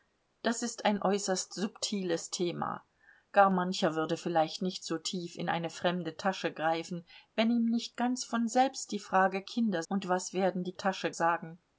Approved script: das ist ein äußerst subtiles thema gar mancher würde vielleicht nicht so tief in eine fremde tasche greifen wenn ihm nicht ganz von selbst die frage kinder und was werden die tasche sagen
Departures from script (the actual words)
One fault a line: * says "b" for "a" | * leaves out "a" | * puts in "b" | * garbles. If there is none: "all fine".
all fine